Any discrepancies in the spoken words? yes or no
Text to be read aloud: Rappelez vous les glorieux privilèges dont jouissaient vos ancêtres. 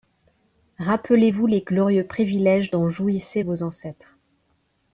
no